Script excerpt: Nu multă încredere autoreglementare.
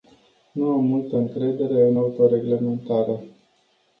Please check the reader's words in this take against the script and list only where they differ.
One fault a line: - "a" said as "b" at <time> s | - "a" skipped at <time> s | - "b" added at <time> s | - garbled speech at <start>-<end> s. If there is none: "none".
- "am" added at 0.7 s
- "în" added at 1.9 s